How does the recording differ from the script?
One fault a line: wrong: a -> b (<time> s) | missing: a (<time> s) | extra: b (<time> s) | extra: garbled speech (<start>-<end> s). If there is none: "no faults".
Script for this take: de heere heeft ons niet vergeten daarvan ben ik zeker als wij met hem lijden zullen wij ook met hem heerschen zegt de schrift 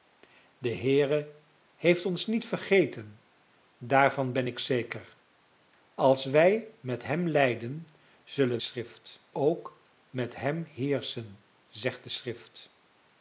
wrong: wij -> schrift (8.6 s)